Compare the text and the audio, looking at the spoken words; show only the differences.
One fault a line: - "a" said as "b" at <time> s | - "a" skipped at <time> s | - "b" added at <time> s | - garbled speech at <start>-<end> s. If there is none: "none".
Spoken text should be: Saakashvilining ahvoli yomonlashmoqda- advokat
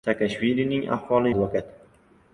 - "yomonlashmoqda" skipped at 1.3 s